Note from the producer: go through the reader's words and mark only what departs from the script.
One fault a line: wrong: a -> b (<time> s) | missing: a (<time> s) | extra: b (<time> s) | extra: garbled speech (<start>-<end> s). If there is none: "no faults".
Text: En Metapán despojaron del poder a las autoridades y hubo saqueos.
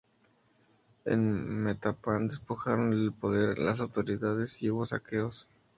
no faults